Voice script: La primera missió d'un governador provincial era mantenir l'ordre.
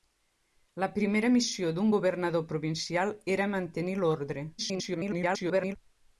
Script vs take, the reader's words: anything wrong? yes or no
yes